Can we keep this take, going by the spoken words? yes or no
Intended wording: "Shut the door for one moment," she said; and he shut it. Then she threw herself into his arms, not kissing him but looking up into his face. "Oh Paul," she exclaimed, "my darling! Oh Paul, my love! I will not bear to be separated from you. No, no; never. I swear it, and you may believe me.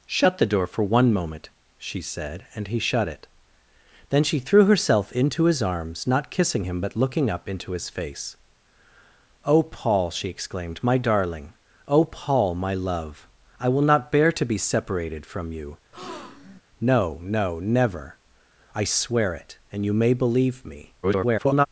no